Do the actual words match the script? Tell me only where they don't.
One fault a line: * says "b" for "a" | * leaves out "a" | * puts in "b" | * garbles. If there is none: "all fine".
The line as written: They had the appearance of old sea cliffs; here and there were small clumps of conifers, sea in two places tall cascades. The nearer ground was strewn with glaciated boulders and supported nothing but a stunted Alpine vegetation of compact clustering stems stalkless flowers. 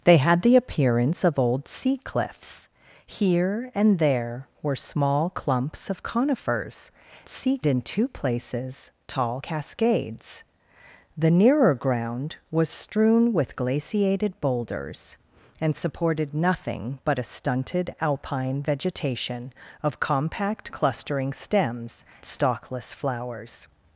all fine